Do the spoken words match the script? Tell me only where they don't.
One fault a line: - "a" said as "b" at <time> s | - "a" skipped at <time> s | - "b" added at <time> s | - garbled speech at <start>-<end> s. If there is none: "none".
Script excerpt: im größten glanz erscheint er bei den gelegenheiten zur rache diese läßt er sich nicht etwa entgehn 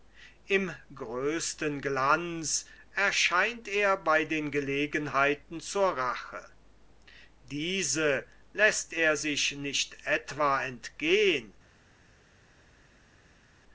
none